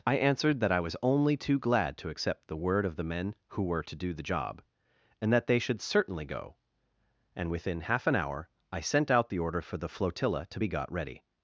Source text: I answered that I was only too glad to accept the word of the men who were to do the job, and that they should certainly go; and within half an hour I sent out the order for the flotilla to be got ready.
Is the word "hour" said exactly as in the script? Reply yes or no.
yes